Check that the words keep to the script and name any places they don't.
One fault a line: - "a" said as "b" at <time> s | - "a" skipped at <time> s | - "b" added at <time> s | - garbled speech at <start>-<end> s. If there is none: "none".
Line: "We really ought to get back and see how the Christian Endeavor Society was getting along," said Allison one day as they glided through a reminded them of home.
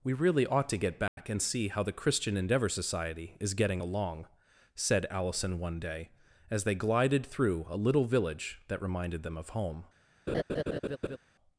- "was" said as "is" at 3.4 s
- "little village that" added at 7.8 s